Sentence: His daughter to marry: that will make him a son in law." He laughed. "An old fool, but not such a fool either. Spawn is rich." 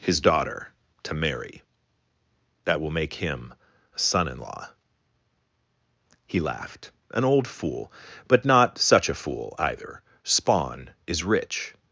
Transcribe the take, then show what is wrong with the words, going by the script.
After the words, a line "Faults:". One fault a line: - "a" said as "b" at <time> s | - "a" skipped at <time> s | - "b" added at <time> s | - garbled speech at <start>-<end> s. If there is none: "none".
His daughter to marry: that will make him a son in law." He laughed. "An old fool, but not such a fool either. Spawn is rich."
Faults:
none